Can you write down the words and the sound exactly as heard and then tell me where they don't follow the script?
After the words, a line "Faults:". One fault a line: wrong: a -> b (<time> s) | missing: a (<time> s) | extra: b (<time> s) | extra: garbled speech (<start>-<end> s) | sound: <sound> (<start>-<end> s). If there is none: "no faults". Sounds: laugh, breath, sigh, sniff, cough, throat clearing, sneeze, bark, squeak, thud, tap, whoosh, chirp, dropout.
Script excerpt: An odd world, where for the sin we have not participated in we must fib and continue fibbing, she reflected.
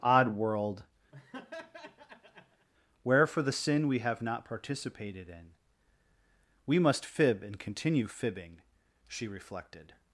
odd world, where for the sin we have not participated in we must fib and continue fibbing, she reflected.
Faults:
missing: An (0.0 s)
sound: laugh (1.1-2.7 s)